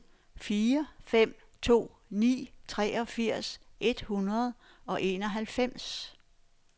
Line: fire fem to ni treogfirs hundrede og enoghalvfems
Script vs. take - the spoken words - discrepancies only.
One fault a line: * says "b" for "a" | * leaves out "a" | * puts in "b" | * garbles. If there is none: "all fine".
* puts in "et"